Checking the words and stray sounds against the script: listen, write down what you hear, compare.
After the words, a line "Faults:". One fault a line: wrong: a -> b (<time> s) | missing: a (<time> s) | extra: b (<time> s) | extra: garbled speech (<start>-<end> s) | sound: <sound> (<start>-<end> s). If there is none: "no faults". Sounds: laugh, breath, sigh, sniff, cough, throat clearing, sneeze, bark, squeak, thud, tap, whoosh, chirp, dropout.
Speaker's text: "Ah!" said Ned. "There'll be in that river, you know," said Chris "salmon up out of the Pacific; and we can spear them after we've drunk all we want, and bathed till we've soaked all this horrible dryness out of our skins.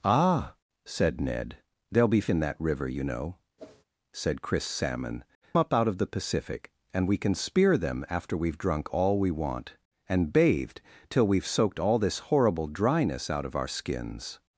"Ah!" said Ned. "There'll be in that river, you know," said Chris "salmon up out of the Pacific; and we can spear them after we've drunk all we want, and bathed till we've soaked all this horrible dryness out of our skins.
Faults:
sound: whoosh (3.6-3.8 s)